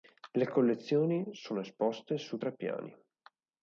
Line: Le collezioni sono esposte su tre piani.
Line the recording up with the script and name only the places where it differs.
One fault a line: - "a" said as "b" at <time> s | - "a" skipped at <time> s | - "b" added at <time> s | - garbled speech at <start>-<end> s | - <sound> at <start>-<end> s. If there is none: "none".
none